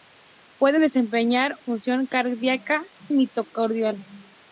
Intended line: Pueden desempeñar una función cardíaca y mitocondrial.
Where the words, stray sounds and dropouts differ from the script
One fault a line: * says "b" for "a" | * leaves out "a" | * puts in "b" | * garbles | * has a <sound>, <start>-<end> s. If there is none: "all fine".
* leaves out "una"
* leaves out "y"